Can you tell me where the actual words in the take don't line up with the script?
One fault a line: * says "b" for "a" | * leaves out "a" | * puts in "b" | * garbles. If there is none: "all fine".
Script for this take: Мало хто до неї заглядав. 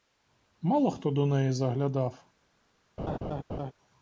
all fine